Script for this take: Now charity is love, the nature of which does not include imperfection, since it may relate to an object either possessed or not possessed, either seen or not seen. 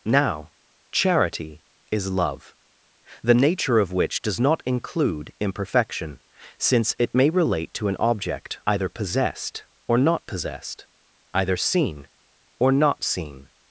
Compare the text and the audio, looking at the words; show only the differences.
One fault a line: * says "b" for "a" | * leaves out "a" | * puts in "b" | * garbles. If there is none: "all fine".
all fine